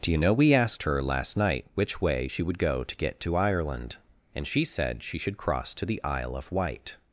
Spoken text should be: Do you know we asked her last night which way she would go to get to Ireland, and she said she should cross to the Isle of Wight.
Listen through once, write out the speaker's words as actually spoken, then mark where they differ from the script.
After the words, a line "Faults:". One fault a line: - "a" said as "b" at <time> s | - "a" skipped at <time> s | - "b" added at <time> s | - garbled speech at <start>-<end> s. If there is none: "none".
Do you know we asked her last night which way she would go to get to Ireland, and she said she should cross to the Isle of Wight.
Faults:
none